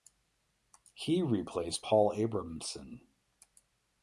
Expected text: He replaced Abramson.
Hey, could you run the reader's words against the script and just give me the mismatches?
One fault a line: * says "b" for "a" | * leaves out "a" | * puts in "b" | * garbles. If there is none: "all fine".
* puts in "Paul"